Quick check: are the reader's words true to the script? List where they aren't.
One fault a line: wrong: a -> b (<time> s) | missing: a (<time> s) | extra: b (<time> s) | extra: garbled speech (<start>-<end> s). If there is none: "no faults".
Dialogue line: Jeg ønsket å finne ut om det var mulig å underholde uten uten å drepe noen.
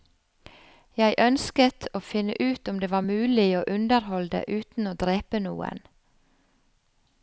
missing: uten (4.9 s)